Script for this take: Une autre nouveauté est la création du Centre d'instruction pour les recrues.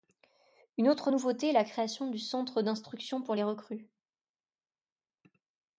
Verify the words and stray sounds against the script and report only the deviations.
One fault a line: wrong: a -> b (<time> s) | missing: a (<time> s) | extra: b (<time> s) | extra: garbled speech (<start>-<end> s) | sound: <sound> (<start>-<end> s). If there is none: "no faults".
no faults